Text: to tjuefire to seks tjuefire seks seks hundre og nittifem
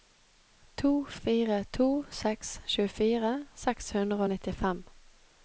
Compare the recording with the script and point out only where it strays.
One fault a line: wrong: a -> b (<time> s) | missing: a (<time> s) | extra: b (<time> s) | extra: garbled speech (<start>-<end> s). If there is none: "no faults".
wrong: tjuefire -> fire (1.2 s)
missing: seks (3.9 s)